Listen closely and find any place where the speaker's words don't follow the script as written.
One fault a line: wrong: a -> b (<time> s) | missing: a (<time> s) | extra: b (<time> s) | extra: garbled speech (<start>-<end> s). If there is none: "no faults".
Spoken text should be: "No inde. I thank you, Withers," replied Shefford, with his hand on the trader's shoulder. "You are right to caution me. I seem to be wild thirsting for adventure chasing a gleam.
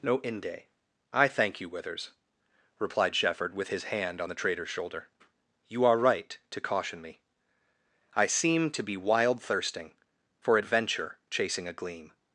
no faults